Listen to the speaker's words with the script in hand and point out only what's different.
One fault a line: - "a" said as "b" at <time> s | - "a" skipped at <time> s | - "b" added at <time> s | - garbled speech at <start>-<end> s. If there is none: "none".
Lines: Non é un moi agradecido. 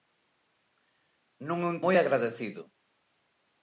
none